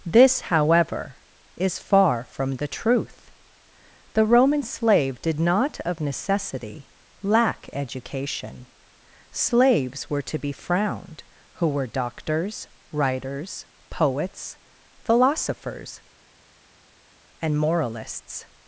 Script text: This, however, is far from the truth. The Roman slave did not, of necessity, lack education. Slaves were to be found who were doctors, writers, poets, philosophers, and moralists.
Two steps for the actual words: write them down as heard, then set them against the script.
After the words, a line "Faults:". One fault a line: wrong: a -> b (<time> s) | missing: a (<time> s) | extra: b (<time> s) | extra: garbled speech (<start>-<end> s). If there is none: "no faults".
This, however, is far from the truth. The Roman slave did not, of necessity, lack education. Slaves were to be frowned who were doctors, writers, poets, philosophers, and moralists.
Faults:
wrong: found -> frowned (10.5 s)